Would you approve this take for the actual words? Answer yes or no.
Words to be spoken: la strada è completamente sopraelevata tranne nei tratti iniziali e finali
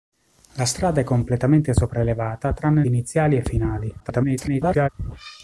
no